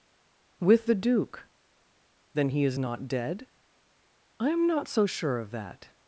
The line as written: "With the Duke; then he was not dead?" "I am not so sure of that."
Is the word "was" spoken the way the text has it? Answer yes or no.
no